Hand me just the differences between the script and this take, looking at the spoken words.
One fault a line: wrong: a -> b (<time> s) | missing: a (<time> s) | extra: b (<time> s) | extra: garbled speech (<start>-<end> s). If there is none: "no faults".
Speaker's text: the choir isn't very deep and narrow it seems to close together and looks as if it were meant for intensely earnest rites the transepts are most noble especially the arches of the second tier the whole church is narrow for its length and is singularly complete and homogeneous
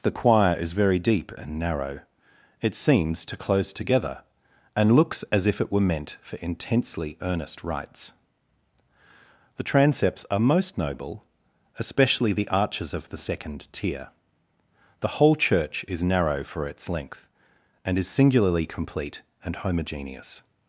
wrong: isn't -> is (0.6 s)